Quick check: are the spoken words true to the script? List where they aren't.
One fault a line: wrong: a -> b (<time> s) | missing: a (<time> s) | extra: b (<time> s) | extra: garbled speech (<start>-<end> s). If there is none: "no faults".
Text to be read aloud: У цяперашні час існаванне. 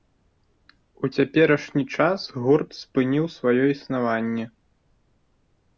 extra: гурт спыніў сваё (2.5 s)